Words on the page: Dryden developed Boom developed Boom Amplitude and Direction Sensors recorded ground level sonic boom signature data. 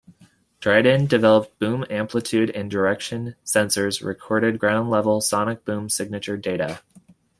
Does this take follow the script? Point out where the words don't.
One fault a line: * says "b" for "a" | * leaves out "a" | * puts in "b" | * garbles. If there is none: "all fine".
* leaves out "developed Boom"